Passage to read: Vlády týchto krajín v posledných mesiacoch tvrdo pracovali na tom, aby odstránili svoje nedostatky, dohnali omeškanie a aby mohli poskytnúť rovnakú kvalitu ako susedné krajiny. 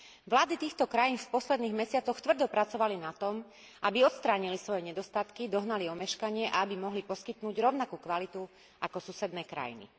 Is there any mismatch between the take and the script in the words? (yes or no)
no